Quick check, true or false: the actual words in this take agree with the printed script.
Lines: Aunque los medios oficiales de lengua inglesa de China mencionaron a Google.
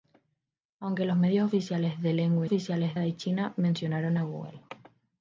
false